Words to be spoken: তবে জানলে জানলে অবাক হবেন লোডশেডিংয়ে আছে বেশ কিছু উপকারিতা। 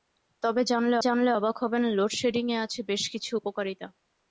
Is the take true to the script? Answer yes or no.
yes